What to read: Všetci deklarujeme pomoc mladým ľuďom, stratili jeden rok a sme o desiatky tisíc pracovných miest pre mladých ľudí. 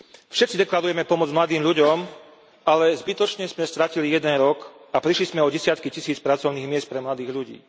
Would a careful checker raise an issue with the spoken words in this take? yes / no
yes